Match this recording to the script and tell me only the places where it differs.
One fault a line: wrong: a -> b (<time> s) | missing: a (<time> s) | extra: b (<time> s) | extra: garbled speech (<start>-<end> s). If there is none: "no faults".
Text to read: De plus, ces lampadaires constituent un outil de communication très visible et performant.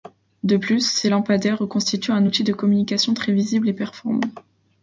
no faults